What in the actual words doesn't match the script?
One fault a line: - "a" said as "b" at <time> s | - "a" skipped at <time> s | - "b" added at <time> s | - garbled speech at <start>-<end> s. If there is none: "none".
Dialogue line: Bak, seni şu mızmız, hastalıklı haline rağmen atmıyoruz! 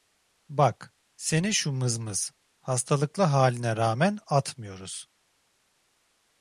none